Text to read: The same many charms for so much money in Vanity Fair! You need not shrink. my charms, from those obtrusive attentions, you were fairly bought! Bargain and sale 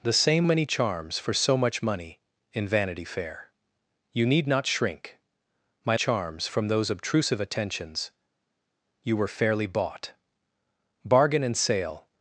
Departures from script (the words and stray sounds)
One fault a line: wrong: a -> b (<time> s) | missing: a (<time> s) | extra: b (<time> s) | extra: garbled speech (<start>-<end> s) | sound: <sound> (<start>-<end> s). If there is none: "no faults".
no faults